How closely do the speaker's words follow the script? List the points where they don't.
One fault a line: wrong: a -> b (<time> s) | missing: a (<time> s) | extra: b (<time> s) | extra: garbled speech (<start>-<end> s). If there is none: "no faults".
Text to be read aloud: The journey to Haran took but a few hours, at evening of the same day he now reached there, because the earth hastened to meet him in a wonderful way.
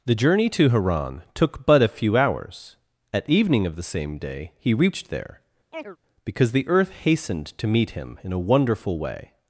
missing: now (4.7 s)